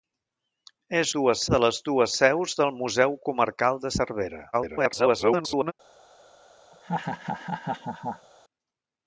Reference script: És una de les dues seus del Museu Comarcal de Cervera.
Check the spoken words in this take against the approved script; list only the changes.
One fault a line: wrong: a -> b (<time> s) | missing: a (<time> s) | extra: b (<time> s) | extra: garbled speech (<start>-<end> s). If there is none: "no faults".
wrong: una -> dues (1.2 s)
extra: garbled speech (4.5-5.7 s)